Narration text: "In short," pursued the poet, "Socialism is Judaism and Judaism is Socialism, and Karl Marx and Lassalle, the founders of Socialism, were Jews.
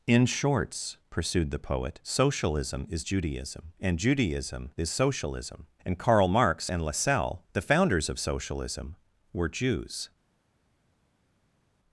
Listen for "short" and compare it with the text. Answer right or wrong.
wrong